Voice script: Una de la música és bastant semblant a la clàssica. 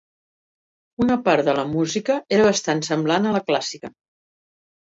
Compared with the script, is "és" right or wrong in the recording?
wrong